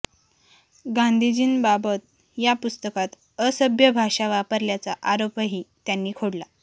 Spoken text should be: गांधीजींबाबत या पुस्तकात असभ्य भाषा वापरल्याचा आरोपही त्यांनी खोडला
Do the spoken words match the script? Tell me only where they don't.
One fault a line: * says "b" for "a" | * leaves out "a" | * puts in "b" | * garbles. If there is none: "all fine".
all fine